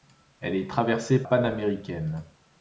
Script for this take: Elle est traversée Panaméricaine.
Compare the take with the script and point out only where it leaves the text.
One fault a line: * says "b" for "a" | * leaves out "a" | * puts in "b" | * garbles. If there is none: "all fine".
all fine